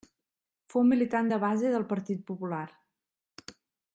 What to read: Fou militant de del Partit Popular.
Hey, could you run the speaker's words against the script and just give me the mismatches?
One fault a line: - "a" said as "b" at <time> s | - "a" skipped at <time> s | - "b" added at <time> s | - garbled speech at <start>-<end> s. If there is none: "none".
- "base" added at 1.4 s